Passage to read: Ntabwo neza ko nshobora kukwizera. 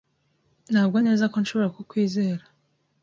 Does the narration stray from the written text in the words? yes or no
no